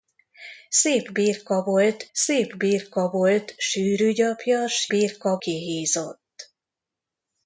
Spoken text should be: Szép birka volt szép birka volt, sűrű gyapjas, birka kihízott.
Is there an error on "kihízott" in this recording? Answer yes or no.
no